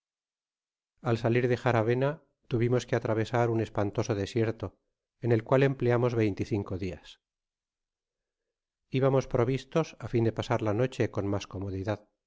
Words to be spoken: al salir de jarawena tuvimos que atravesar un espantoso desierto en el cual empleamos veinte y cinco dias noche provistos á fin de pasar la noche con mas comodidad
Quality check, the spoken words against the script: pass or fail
fail